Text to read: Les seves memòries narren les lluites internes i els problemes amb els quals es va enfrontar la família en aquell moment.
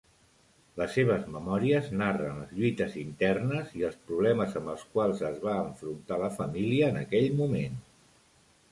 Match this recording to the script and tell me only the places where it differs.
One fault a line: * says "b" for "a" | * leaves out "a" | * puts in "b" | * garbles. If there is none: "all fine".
all fine